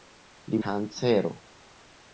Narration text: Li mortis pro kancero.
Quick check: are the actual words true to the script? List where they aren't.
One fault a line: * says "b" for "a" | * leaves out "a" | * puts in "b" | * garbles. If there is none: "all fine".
* leaves out "mortis pro"